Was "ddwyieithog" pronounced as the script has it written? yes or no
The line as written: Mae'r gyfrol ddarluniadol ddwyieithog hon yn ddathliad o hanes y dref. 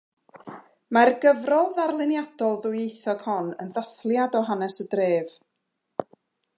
yes